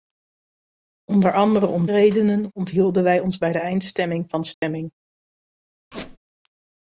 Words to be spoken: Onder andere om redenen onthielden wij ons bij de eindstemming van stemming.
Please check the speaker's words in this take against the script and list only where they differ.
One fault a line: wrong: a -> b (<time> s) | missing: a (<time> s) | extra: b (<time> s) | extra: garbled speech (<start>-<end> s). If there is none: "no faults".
no faults